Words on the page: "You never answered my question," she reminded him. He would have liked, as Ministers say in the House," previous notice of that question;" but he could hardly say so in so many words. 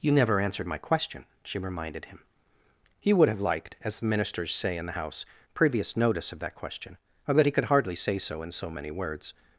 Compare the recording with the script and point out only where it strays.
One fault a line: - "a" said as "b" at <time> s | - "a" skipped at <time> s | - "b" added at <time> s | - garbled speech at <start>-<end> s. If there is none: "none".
none